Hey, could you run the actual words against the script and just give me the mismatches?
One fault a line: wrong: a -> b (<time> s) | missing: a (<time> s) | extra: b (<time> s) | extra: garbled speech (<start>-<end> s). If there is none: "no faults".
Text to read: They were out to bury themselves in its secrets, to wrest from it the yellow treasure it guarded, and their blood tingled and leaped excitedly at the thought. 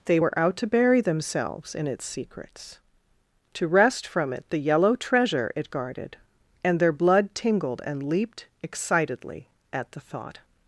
no faults